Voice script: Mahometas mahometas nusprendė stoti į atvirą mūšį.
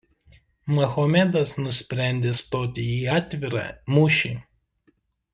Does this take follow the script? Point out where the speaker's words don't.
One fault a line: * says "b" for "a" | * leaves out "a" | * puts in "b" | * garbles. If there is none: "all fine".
* leaves out "mahometas"